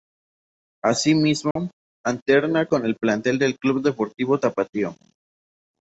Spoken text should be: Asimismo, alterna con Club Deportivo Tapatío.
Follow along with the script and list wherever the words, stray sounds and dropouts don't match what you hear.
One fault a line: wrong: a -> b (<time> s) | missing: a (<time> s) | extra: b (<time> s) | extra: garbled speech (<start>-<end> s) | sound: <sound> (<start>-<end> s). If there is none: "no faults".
sound: dropout (1.5-1.6 s)
extra: el plantel del (2.9 s)